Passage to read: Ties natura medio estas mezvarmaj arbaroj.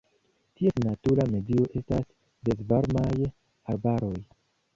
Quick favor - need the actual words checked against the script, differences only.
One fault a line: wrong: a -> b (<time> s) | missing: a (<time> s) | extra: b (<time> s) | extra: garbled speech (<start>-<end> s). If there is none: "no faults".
no faults